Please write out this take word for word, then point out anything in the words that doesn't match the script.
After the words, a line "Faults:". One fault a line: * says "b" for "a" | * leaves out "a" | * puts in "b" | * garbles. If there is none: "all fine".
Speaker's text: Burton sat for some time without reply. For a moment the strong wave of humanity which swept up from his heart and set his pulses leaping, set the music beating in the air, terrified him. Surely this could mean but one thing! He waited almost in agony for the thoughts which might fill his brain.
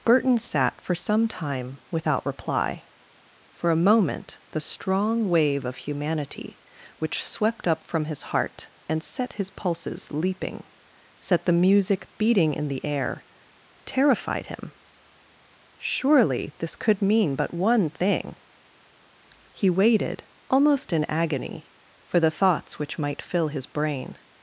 Burton sat for some time without reply. For a moment the strong wave of humanity which swept up from his heart and set his pulses leaping, set the music beating in the air, terrified him. Surely this could mean but one thing! He waited almost in agony for the thoughts which might fill his brain.
Faults:
all fine